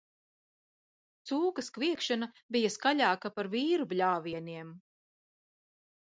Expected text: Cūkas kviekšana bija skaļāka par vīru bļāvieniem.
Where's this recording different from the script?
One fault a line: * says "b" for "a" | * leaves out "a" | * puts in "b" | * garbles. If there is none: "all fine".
all fine